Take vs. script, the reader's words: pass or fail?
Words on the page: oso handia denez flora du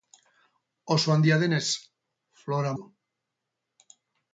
pass